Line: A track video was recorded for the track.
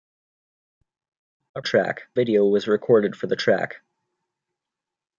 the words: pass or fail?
pass